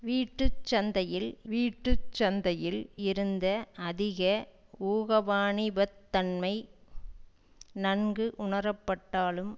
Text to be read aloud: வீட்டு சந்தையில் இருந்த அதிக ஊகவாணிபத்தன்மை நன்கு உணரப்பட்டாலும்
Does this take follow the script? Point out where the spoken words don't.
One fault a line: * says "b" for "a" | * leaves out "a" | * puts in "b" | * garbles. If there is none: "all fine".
* puts in "வீட்டு சந்தையில்"